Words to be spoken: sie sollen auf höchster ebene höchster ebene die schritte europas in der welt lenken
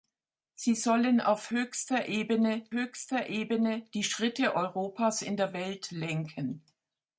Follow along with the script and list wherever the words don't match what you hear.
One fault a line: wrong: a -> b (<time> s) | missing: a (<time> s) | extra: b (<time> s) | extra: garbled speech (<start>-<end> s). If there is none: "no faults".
no faults